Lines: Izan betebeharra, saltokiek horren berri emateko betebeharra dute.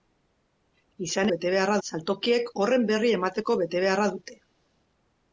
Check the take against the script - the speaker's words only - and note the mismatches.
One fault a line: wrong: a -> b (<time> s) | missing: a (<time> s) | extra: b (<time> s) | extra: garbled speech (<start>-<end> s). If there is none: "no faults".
no faults